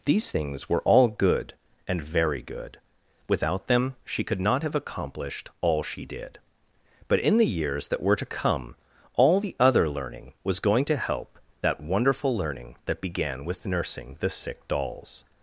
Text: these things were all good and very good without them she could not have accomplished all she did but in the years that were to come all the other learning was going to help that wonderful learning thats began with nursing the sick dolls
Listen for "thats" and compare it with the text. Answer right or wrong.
wrong